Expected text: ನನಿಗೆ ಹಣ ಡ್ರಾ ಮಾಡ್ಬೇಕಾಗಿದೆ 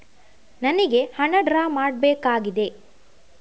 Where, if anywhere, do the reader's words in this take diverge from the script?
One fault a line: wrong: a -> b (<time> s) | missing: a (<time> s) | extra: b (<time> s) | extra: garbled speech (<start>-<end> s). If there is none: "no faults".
no faults